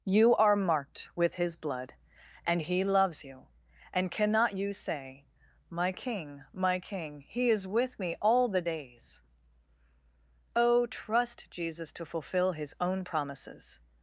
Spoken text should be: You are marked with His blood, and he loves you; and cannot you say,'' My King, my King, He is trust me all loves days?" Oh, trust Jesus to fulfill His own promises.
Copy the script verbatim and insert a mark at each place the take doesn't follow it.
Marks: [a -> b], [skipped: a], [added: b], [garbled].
You are marked with His blood, and he loves you; and cannot you say,'' My King, my King, He is [trust -> with] me all [loves -> the] days?" Oh, trust Jesus to fulfill His own promises.